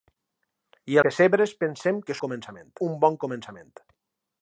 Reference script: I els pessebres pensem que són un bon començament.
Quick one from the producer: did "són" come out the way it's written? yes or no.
no